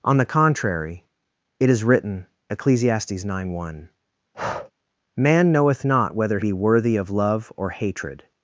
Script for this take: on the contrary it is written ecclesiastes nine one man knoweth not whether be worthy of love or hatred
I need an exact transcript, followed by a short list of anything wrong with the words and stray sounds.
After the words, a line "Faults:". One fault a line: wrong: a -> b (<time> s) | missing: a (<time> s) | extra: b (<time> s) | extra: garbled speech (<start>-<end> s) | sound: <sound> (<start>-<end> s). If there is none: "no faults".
on the contrary it is written ecclesiastes nine one man knoweth not whether be worthy of love or hatred
Faults:
sound: breath (4.3-4.7 s)